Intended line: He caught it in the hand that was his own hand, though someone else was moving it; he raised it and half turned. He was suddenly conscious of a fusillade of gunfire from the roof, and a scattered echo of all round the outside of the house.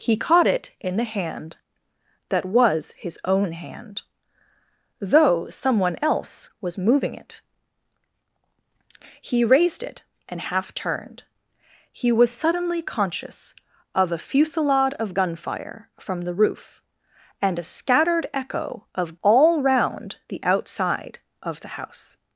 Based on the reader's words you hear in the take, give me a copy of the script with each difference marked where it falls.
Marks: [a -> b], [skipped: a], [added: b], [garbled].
He caught it in the hand that was his own hand, though someone else was moving it; he raised it and half turned. He was suddenly conscious of a fusillade of gunfire from the roof, and a scattered echo of all round the outside of the house.